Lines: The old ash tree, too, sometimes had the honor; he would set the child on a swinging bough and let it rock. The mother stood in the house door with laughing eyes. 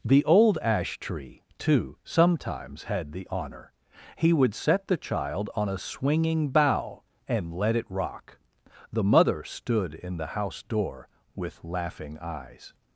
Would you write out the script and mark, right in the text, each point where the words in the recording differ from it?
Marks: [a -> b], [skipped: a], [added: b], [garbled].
The old ash tree, too, sometimes had the honor; he would set the child on a swinging bough and let it rock. The mother stood in the house door with laughing eyes.